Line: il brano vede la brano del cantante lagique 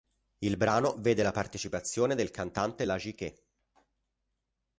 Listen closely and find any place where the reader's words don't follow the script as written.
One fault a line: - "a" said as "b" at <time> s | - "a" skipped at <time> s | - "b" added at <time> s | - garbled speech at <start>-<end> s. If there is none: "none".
- "brano" said as "partecipazione" at 1.3 s